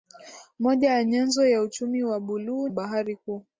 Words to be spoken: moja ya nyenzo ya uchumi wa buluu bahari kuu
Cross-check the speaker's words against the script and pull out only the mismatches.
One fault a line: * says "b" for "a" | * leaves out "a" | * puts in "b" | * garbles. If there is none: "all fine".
all fine